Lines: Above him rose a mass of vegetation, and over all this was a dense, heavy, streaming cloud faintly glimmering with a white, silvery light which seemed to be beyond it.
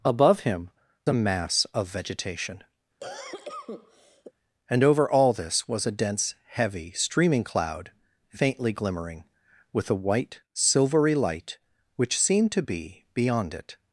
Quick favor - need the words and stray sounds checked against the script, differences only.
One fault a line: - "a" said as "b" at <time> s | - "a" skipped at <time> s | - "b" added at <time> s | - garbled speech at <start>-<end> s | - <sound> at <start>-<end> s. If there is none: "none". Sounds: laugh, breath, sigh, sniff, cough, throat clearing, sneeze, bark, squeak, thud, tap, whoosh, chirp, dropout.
- "rose" skipped at 0.7 s
- cough at 3.0-4.3 s